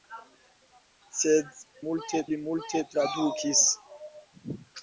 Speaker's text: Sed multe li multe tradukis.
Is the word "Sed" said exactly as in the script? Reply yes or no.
yes